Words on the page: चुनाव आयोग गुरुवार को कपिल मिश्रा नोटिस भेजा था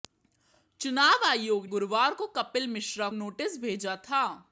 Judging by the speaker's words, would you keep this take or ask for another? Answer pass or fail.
pass